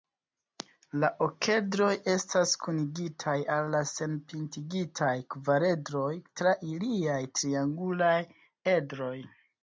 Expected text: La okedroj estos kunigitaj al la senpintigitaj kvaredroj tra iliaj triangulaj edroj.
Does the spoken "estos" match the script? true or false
false